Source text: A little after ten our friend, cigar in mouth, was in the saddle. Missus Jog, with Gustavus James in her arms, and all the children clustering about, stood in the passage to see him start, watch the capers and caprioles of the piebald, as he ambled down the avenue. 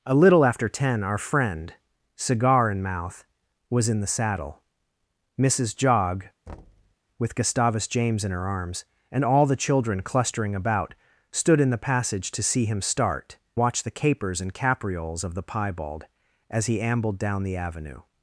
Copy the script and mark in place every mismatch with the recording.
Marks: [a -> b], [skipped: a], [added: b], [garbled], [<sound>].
A little after ten our friend, cigar in mouth, was in the saddle. Missus Jog, [thud] with Gustavus James in her arms, and all the children clustering about, stood in the passage to see him start, watch the capers and caprioles of the piebald, as he ambled down the avenue.